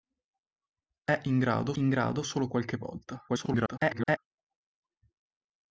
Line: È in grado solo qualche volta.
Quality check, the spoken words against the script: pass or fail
fail